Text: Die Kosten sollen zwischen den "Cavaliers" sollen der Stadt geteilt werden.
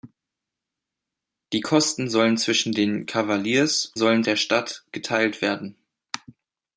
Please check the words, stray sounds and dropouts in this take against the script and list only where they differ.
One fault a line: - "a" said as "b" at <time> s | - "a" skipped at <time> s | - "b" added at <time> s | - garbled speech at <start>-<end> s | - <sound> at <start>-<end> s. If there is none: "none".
none